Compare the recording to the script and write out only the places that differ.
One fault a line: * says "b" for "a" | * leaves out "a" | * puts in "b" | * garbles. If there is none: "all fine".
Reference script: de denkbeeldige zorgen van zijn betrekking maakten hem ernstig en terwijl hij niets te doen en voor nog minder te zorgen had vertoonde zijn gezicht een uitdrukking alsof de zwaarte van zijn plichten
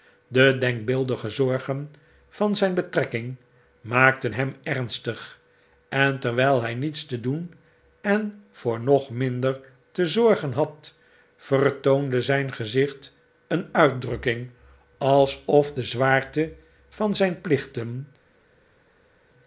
all fine